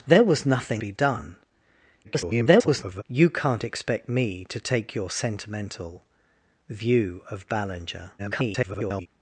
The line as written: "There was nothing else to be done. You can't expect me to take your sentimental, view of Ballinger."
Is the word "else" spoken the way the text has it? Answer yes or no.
no